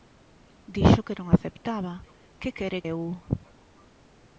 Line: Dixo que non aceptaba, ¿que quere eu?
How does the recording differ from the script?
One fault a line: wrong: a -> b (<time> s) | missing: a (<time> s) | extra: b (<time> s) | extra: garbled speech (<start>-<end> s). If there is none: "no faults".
no faults